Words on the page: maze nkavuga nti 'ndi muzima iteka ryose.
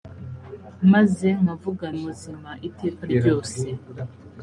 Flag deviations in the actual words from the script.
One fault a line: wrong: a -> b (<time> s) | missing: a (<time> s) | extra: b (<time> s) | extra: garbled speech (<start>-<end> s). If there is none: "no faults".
missing: nti ndi (1.9 s)